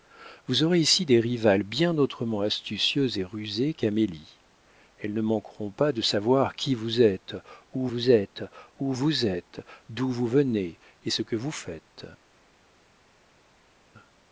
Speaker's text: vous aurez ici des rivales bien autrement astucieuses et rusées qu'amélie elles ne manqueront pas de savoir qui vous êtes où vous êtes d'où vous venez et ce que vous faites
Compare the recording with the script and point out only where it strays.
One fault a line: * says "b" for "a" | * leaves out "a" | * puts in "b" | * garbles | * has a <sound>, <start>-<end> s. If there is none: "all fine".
* puts in "où vous êtes"